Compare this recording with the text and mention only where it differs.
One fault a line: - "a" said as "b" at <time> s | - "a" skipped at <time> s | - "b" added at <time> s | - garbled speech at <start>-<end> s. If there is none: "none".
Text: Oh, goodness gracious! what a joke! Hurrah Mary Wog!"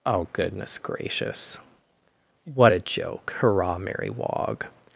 none